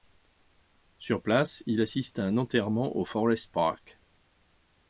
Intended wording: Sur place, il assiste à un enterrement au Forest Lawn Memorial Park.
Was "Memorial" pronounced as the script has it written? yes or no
no